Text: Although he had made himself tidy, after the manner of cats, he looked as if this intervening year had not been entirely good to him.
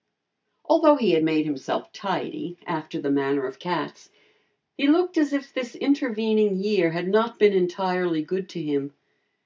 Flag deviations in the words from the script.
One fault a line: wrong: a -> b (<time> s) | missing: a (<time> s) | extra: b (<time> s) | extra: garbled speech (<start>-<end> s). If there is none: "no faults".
no faults